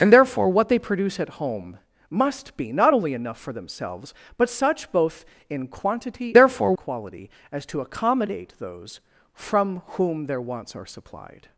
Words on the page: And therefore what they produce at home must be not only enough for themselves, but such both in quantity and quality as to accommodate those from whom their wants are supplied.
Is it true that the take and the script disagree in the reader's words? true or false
true